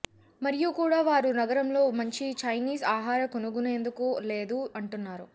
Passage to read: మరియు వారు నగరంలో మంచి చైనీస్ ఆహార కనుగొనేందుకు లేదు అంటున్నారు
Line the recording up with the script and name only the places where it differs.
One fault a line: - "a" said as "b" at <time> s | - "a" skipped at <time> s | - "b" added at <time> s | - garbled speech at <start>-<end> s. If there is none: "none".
- "కూడా" added at 0.8 s